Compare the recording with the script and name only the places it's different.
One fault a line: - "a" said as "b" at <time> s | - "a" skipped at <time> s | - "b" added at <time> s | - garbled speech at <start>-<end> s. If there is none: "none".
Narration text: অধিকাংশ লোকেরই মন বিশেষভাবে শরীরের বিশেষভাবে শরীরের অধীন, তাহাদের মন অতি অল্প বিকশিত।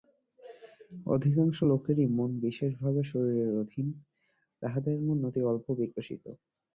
- "বিশেষভাবে শরীরের" skipped at 3.5 s